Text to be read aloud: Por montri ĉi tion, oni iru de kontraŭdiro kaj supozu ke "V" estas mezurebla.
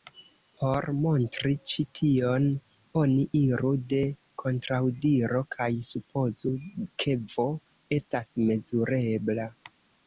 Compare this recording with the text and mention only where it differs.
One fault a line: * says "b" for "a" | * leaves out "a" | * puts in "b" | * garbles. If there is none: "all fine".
all fine